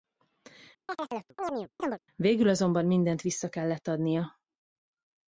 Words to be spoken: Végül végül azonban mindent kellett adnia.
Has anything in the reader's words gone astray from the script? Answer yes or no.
yes